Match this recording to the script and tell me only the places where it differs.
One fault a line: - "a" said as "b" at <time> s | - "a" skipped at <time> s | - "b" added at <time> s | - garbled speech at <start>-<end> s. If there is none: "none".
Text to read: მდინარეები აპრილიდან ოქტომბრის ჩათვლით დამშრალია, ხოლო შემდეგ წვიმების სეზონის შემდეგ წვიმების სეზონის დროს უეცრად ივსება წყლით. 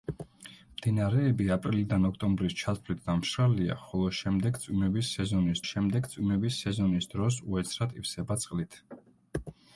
none